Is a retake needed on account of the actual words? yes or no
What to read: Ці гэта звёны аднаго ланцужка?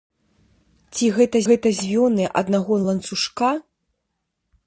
yes